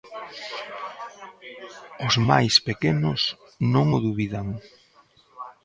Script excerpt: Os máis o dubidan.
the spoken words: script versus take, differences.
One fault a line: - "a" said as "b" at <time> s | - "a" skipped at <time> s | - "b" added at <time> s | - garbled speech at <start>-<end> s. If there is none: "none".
- "pequenos non" added at 2.7 s